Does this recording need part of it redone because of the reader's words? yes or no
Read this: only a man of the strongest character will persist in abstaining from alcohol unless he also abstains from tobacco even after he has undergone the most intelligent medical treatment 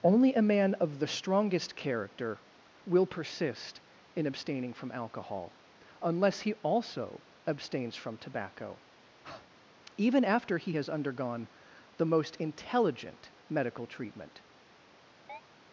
no